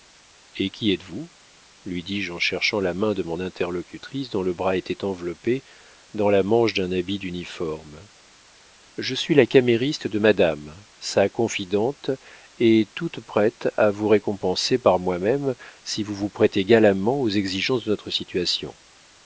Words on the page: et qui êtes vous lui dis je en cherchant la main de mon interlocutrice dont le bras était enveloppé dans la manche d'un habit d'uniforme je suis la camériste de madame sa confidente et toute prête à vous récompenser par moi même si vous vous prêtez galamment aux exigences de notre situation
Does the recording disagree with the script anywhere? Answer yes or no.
no